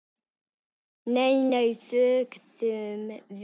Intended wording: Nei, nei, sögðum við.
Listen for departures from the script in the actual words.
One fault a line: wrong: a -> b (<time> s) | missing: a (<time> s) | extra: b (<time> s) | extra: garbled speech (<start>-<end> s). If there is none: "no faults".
no faults